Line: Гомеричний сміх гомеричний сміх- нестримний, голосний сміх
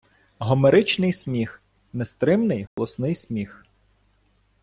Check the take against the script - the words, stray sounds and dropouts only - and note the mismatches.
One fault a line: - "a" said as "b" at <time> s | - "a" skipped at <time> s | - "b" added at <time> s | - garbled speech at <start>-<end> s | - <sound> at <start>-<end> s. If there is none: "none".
- "гомеричний сміх" skipped at 1.6 s
- dropout at 2.7-2.8 s